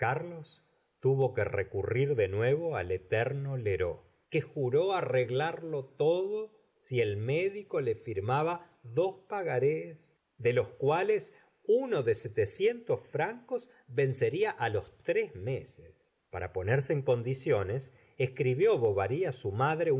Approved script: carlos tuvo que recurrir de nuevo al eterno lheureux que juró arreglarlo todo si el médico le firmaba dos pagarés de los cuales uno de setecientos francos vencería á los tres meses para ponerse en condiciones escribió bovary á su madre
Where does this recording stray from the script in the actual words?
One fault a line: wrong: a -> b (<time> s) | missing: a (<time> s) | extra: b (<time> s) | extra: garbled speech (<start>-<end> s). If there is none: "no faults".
no faults